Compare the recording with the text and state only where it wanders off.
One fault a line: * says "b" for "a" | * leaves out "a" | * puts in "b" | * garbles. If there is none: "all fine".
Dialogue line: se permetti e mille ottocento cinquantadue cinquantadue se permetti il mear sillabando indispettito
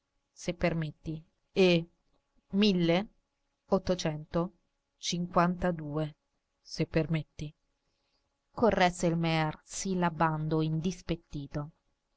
* leaves out "cinquantadue"
* puts in "corresse"